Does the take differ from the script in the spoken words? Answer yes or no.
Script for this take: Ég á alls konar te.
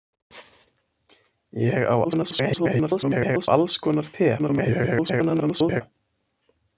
yes